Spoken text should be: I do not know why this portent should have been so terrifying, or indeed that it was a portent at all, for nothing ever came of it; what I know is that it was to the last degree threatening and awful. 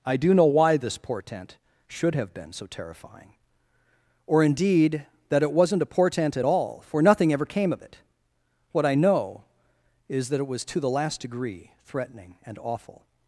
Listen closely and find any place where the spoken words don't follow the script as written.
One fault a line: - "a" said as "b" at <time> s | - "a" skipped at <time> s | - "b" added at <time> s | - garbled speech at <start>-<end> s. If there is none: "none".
- "not" skipped at 0.3 s
- "was" said as "wasn't" at 5.5 s